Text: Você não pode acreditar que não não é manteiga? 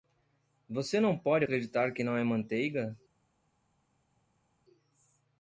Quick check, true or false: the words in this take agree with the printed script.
false